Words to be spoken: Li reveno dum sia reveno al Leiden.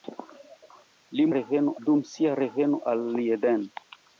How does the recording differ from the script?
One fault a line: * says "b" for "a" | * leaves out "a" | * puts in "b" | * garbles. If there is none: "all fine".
all fine